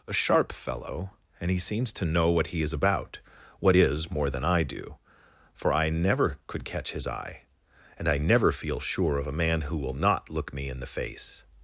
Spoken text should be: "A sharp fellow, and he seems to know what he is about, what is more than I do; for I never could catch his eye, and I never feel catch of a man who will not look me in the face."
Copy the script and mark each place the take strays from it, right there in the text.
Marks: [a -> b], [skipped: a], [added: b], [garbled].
"A sharp fellow, and he seems to know what he is about, what is more than I do; for I never could catch his eye, and I never feel [catch -> sure] of a man who will not look me in the face."